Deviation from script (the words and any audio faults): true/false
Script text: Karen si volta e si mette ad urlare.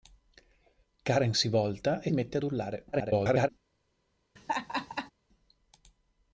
true